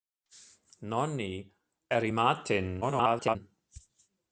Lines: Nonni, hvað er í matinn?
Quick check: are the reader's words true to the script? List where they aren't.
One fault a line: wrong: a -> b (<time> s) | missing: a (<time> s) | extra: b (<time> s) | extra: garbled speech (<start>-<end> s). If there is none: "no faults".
missing: hvað (1.3 s)
extra: garbled speech (2.8-3.4 s)